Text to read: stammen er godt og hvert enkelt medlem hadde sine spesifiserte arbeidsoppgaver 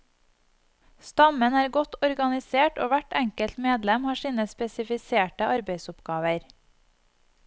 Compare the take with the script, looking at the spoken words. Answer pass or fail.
fail